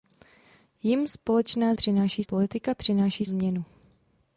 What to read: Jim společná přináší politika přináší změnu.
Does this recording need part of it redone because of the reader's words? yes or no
no